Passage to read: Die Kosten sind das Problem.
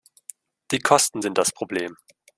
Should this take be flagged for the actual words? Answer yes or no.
no